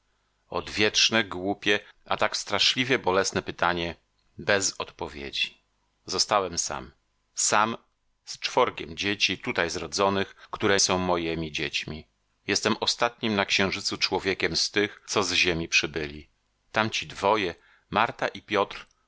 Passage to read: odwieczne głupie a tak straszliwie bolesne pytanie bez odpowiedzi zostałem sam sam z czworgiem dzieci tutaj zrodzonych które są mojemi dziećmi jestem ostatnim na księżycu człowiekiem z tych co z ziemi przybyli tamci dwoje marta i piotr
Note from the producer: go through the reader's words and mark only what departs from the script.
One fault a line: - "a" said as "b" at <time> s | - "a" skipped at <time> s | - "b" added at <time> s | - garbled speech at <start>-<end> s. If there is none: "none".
none